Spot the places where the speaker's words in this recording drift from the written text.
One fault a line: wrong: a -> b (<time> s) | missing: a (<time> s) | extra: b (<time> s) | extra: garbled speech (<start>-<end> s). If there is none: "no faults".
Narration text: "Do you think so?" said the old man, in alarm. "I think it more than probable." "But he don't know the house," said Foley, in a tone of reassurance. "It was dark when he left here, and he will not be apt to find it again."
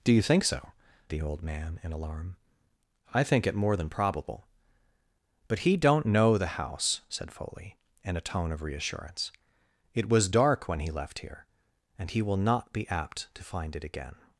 missing: said (0.7 s)